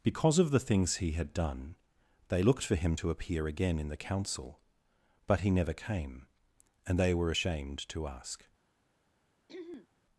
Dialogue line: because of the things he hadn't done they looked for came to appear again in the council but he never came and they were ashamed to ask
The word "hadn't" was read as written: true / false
false